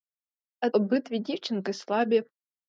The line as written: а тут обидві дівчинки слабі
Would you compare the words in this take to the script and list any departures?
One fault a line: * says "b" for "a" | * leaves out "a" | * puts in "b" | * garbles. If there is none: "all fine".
* leaves out "тут"